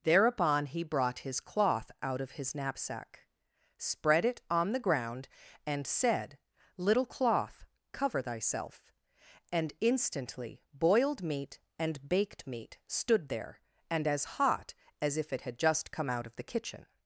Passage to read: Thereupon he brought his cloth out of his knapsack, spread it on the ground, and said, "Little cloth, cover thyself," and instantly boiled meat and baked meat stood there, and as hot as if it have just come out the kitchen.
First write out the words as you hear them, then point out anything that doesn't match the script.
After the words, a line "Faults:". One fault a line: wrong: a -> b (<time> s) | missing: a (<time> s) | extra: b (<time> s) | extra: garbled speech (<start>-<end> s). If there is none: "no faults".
Thereupon he brought his cloth out of his knapsack, spread it on the ground, and said, "Little cloth, cover thyself," and instantly boiled meat and baked meat stood there, and as hot as if it had just come out of the kitchen.
Faults:
wrong: have -> had (15.4 s)
extra: of (16.2 s)